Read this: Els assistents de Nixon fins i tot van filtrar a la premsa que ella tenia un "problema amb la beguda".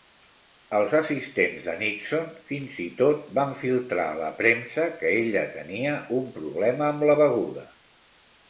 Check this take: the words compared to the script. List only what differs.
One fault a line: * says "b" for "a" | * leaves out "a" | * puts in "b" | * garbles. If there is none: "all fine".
all fine